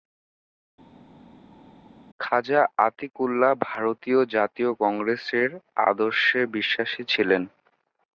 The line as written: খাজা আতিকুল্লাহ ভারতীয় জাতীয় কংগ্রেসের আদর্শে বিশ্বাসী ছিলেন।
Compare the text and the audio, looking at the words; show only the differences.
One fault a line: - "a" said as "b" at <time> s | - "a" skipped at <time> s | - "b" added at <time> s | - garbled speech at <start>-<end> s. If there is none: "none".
none